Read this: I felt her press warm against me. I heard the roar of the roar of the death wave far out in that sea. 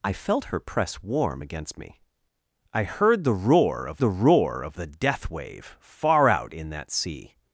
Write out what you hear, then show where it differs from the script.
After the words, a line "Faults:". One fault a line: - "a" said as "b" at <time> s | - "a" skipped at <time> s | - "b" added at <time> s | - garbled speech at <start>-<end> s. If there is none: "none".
I felt her press warm against me. I heard the roar of the roar of the death wave far out in that sea.
Faults:
none